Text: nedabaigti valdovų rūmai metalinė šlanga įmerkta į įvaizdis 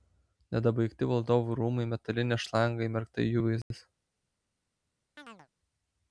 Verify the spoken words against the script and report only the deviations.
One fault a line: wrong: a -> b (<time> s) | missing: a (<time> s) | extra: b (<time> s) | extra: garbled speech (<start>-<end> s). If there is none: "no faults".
no faults